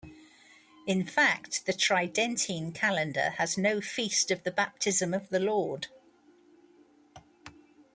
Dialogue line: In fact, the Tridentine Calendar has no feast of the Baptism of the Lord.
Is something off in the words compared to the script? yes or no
no